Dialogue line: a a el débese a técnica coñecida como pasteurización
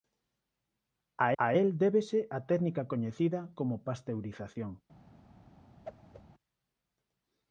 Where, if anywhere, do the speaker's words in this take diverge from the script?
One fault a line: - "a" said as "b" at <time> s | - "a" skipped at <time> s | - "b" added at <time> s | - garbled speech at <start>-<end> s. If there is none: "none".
none